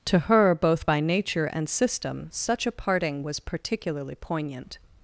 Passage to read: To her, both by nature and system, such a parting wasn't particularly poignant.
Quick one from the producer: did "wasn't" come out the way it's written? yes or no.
no